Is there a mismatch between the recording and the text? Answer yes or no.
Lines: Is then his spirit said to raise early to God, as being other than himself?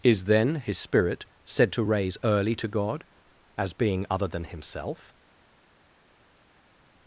no